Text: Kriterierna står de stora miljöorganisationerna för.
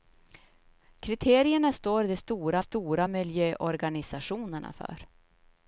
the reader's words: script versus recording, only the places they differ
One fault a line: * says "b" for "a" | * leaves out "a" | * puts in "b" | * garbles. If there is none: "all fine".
* puts in "stora"